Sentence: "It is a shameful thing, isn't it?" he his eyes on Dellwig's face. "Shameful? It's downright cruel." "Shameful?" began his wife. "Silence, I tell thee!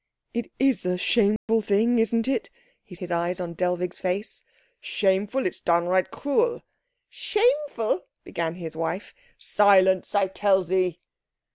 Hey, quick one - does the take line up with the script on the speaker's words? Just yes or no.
yes